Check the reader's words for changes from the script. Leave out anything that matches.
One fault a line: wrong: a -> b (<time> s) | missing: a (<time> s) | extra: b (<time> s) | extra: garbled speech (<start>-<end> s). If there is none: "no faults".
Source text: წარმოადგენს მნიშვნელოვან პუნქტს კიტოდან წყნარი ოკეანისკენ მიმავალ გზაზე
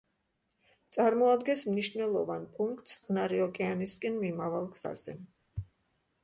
missing: კიტოდან (3.0 s)